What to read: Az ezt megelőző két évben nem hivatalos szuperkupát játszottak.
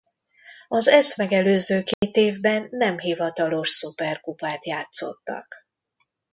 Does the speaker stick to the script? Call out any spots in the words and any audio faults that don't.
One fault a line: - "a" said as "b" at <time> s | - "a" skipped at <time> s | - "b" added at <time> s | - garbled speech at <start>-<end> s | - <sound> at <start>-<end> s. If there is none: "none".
- dropout at 1.9-2.0 s